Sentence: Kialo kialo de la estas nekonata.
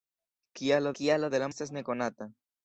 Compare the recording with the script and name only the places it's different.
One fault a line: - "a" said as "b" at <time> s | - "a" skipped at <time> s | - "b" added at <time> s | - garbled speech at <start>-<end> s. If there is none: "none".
none